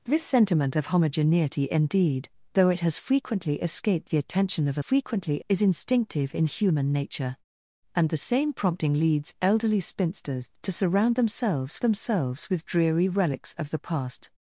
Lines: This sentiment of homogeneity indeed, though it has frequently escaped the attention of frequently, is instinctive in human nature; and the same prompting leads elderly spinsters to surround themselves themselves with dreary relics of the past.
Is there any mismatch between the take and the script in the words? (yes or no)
no